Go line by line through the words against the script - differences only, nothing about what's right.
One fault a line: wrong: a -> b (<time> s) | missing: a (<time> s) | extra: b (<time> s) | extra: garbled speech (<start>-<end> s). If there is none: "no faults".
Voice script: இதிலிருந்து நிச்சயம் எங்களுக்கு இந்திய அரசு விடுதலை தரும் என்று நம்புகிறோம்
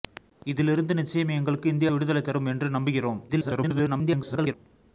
missing: அரசு (1.9 s)
extra: garbled speech (3.3-4.5 s)